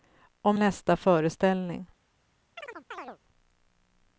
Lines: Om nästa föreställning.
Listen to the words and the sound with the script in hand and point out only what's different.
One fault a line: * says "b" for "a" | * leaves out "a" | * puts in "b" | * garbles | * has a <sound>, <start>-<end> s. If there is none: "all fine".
* has a chirp, 2.6-3.2 s